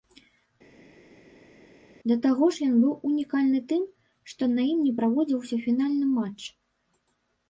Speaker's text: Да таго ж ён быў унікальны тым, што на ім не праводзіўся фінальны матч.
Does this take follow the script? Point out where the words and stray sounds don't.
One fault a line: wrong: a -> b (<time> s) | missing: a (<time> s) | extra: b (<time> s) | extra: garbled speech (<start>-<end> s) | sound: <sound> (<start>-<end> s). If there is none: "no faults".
no faults